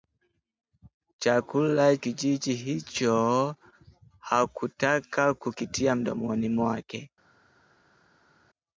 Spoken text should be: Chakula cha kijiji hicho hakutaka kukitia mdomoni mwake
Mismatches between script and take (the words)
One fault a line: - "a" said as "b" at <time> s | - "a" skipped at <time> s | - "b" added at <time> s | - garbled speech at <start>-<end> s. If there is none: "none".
- "cha" skipped at 2.0 s